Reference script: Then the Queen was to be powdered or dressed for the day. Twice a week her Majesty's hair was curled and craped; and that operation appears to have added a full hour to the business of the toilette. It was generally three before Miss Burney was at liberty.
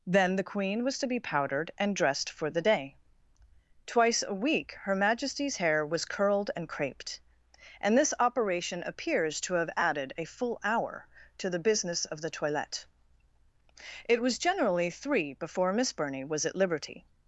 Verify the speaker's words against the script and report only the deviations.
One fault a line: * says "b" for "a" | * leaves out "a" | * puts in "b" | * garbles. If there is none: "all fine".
* says "and" for "or"
* says "this" for "that"